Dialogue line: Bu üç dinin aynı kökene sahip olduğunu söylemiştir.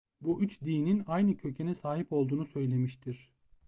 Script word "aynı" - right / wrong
right